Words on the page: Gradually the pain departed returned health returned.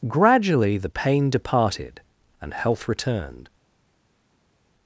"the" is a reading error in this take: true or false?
false